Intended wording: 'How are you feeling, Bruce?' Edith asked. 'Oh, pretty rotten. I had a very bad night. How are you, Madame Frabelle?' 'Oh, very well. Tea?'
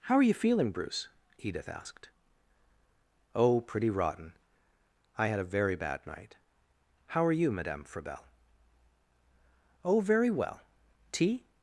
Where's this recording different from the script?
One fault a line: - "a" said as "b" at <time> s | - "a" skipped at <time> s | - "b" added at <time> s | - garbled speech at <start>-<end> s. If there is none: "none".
none